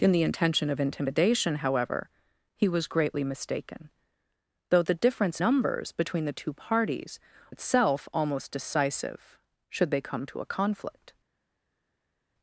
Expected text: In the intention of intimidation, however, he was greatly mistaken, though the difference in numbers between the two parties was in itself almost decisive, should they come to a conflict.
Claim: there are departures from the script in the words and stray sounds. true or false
true